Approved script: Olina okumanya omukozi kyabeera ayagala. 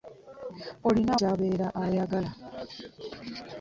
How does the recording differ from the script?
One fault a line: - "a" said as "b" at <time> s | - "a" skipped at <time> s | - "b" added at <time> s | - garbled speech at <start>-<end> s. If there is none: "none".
- "okumanya omukozi" skipped at 1.1 s